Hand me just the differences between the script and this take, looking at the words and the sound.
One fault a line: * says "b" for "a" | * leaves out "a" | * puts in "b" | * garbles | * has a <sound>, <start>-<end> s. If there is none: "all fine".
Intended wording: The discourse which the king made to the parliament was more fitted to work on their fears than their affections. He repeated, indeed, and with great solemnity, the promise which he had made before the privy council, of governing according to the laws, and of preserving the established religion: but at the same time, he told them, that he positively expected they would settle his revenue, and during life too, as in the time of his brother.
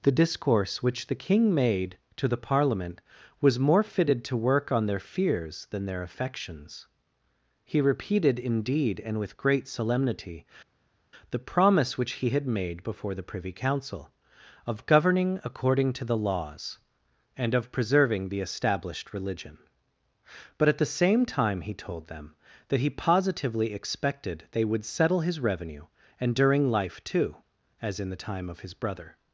all fine